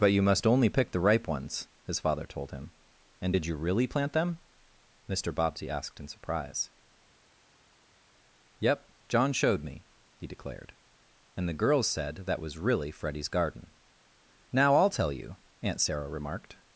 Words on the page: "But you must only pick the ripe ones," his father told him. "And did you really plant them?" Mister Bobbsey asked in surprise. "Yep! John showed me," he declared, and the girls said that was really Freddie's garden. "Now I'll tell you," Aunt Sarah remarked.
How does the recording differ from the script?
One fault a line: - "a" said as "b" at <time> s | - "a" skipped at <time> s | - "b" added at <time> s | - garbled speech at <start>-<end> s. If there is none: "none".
none